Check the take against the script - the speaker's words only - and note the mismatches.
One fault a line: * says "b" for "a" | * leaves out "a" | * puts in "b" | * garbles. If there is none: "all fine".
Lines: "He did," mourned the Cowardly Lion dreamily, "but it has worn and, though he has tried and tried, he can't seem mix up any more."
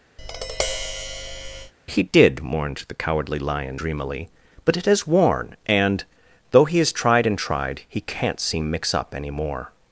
all fine